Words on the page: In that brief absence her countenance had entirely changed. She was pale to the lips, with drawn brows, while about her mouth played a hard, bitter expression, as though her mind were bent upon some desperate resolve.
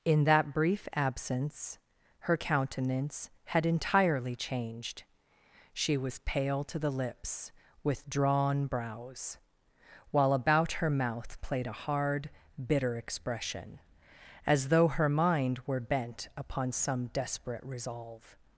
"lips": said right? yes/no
yes